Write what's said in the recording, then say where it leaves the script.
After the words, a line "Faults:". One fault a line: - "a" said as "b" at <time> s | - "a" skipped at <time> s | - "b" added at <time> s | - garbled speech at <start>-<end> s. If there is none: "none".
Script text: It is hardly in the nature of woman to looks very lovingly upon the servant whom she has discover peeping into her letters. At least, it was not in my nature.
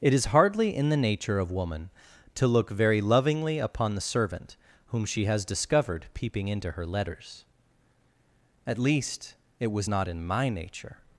It is hardly in the nature of woman to look very lovingly upon the servant whom she has discovered peeping into her letters. At least, it was not in my nature.
Faults:
- "looks" said as "look" at 2.5 s
- "discover" said as "discovered" at 5.5 s